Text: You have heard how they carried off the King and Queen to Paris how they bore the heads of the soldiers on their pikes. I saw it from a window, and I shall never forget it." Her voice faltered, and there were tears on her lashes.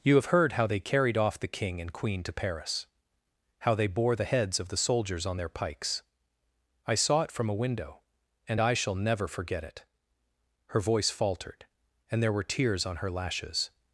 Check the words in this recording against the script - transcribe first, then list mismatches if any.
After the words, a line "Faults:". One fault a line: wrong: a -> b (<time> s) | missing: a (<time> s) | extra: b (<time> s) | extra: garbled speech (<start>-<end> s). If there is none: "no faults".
You have heard how they carried off the King and Queen to Paris how they bore the heads of the soldiers on their pikes. I saw it from a window, and I shall never forget it." Her voice faltered, and there were tears on her lashes.
Faults:
no faults